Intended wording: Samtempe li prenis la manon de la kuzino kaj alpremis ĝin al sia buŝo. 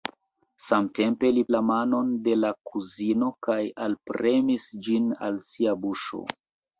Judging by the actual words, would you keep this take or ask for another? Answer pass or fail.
fail